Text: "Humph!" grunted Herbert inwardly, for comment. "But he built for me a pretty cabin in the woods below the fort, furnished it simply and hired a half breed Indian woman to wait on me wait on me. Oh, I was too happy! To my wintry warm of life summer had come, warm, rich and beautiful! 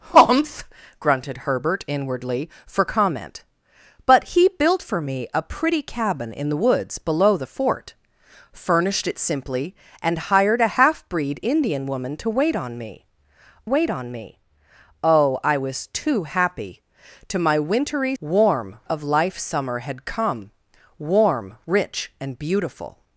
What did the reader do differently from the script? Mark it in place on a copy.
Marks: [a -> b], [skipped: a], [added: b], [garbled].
"Humph!" grunted Herbert inwardly, for comment. "But he built for me a pretty cabin in the woods below the fort, furnished it simply and hired a half breed Indian woman to wait on me wait on me. Oh, I was too happy! To my wintry warm of life summer had come, warm, rich and beautiful!